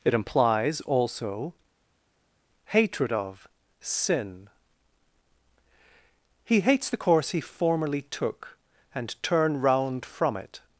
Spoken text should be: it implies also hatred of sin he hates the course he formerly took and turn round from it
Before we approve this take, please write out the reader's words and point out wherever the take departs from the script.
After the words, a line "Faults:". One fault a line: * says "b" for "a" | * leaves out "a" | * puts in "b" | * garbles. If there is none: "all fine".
it implies also hatred of sin he hates the course he formerly took and turn round from it
Faults:
all fine